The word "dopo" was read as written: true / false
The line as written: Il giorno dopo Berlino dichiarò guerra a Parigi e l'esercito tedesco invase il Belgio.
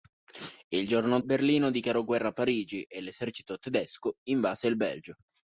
false